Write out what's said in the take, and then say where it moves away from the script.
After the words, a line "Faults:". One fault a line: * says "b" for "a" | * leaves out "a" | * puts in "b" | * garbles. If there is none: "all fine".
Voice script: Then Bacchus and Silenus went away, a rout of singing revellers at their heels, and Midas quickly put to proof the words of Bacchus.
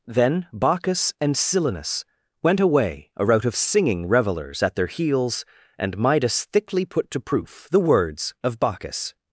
Then Bacchus and Silenus went away, a rout of singing revellers at their heels, and Midas thickly put to proof the words of Bacchus.
Faults:
* says "thickly" for "quickly"